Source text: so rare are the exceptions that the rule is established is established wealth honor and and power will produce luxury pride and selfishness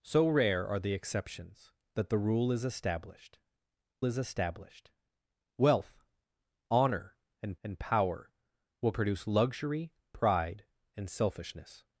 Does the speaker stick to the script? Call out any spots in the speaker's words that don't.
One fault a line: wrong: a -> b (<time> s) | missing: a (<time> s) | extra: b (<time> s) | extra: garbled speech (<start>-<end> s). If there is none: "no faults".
no faults